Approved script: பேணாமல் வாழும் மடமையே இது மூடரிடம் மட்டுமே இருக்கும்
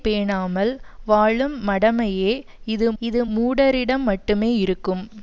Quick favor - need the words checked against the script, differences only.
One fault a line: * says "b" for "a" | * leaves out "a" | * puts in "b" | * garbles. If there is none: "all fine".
* puts in "இது"